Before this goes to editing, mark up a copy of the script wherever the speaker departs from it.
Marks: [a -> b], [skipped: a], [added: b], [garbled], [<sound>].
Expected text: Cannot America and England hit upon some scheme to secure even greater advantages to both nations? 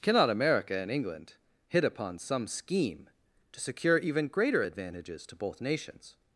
Cannot America and England hit upon some scheme to secure even greater advantages to both nations?